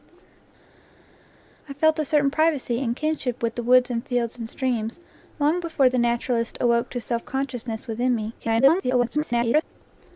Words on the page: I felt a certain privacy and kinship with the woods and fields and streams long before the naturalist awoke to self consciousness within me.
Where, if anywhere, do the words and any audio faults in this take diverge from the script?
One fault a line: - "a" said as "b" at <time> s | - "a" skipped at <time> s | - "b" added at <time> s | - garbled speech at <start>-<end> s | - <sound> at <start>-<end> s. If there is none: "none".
- garbled speech at 8.4-9.6 s